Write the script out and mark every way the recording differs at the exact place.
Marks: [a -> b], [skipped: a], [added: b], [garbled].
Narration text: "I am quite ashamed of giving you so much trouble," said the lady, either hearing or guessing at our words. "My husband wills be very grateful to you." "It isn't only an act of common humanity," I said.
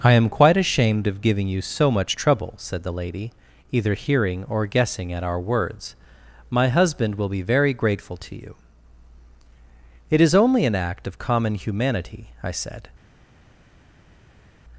"I am quite ashamed of giving you so much trouble," said the lady, either hearing or guessing at our words. "My husband [wills -> will] be very grateful to you." "It [isn't -> is] only an act of common humanity," I said.